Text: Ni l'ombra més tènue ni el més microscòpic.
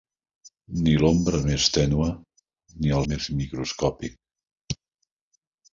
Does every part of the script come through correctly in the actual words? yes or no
yes